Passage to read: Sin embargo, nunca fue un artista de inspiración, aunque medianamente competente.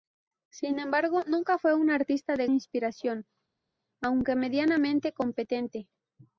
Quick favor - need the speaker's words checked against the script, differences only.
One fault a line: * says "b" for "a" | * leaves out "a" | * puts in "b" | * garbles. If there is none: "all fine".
all fine